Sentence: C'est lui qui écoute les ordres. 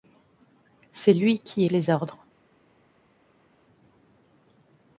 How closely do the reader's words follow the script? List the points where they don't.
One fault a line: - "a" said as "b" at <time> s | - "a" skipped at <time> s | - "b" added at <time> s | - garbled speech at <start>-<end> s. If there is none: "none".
- "écoute" skipped at 1.6 s